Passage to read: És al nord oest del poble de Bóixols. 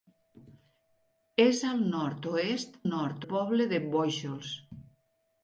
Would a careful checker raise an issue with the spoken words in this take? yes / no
yes